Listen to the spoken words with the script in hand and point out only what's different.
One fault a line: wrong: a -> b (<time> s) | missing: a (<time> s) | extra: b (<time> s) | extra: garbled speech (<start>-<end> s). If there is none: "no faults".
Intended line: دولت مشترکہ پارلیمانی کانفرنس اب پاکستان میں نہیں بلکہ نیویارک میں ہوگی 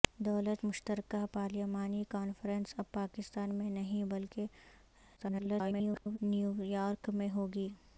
extra: garbled speech (5.2-6.2 s)